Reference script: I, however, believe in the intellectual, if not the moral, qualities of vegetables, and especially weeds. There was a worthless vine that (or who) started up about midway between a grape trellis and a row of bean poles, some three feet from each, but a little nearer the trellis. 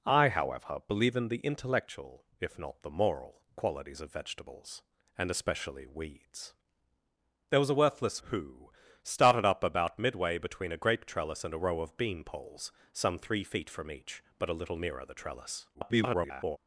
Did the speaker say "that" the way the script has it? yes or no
no